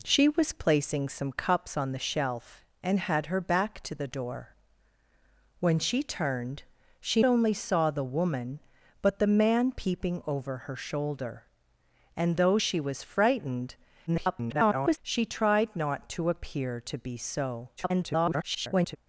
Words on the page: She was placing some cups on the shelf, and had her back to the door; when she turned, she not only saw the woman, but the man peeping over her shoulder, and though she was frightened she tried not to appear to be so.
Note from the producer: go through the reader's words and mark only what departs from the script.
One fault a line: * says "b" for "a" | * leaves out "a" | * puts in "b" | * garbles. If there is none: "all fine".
* leaves out "not"
* garbles
* garbles